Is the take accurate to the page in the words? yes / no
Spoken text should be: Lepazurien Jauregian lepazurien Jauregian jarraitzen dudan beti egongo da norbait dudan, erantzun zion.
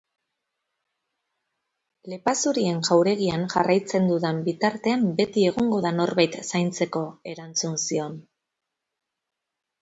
no